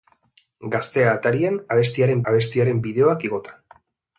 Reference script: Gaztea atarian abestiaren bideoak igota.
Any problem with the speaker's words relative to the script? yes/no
yes